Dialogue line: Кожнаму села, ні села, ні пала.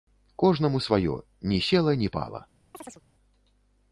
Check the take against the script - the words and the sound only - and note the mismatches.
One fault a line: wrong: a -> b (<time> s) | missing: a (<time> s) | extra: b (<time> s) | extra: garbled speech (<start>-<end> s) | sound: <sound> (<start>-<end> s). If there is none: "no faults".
wrong: села -> сваё (0.8 s)
sound: chirp (2.7-3.0 s)